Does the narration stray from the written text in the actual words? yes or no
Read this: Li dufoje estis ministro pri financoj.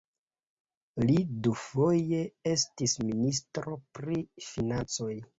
no